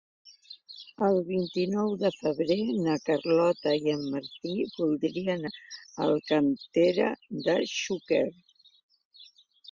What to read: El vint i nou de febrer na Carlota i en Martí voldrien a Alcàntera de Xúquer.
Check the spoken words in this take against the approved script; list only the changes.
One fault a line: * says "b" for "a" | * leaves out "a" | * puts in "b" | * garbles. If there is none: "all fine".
all fine